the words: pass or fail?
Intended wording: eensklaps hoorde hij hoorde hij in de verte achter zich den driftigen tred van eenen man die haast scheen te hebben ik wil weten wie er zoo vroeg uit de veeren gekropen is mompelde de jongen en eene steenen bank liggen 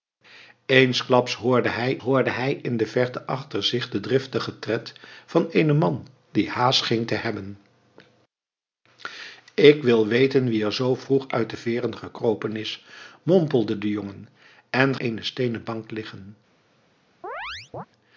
pass